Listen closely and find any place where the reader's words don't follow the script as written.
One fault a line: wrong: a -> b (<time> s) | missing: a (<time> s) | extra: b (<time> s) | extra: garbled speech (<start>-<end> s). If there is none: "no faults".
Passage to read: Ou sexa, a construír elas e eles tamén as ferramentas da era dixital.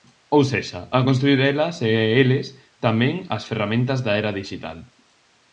no faults